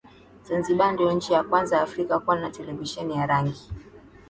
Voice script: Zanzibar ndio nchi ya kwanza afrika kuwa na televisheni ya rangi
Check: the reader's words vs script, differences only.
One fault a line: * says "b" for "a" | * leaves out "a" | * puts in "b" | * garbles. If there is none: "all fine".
all fine